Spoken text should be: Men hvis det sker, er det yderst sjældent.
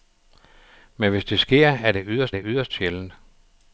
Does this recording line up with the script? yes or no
no